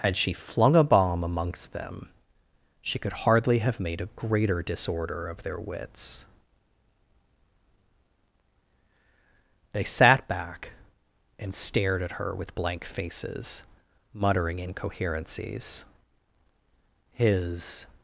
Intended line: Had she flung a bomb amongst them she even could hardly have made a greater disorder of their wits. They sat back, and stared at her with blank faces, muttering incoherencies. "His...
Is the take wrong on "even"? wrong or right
wrong